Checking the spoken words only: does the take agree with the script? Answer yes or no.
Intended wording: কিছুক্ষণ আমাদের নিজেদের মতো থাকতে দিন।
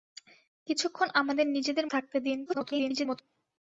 no